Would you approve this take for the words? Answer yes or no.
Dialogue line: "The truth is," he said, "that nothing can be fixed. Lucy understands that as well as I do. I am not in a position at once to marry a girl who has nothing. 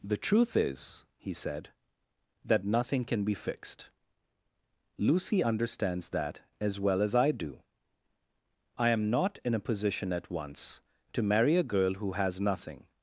yes